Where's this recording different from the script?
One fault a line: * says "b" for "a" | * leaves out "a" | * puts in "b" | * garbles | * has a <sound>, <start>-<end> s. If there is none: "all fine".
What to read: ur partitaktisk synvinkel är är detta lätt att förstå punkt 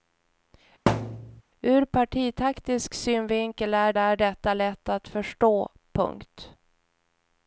* has a thud, 0.9-1.4 s